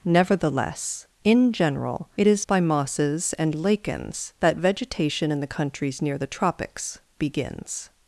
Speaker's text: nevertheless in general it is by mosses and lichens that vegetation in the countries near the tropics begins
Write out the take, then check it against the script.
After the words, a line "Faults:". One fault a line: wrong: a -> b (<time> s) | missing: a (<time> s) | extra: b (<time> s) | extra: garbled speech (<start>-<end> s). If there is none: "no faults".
nevertheless in general it is by mosses and lichens that vegetation in the countries near the tropics begins
Faults:
no faults